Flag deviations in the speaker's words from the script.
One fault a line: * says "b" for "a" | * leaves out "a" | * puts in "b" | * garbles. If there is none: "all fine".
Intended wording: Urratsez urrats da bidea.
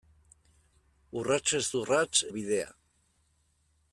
all fine